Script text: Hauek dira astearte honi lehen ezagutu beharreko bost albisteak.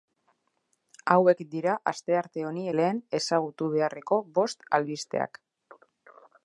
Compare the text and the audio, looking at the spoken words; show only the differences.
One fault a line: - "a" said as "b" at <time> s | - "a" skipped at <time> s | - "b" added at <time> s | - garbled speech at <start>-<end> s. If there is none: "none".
none